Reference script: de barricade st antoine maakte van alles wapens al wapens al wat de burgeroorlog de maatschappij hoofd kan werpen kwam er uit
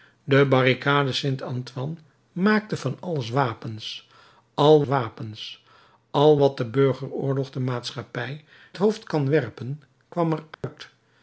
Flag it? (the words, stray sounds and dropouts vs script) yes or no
yes